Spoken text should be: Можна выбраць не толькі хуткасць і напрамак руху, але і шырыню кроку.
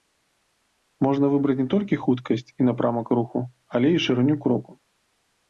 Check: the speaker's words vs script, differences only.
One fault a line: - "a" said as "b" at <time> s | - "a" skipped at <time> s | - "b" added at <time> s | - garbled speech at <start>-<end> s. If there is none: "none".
none